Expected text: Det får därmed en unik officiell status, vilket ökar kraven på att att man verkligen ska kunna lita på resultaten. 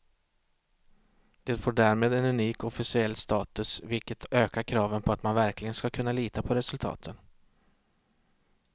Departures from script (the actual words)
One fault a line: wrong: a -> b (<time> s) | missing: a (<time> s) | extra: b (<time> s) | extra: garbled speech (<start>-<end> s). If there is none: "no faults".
missing: att (5.2 s)